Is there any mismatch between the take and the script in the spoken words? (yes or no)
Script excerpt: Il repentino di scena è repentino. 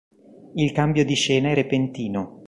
yes